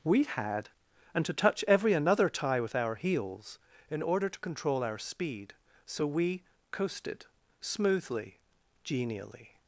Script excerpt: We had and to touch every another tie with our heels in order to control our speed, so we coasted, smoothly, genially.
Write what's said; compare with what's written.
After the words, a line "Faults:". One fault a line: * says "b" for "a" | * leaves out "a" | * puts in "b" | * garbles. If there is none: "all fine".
We had and to touch every another tie with our heels in order to control our speed, so we coasted, smoothly, genially.
Faults:
all fine